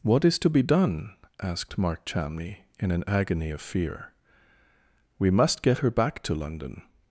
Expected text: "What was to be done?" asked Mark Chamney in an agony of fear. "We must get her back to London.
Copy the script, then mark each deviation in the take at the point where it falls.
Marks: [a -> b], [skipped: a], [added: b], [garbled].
"What [was -> is] to be done?" asked Mark Chamney in an agony of fear. "We must get her back to London.